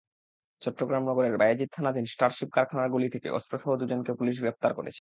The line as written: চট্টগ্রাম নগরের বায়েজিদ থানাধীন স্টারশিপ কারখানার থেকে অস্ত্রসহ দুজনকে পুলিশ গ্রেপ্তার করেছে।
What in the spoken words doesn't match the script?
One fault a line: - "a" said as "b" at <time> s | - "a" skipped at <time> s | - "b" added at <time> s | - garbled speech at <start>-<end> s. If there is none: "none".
- "গলি" added at 2.9 s